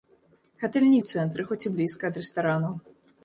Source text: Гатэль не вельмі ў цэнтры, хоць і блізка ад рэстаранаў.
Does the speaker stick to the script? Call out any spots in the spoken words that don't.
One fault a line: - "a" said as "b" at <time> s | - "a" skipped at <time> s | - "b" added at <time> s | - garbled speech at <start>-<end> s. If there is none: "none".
- "вельмі" skipped at 1.0 s